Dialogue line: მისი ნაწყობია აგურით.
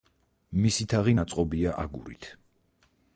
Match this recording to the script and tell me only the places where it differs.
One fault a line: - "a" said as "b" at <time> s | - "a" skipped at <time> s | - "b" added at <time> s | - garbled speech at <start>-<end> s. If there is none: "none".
- "თაღი" added at 0.9 s